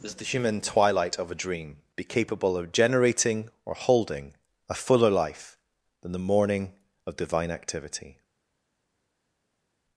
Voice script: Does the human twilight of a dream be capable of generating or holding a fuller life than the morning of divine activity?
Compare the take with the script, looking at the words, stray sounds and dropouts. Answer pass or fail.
pass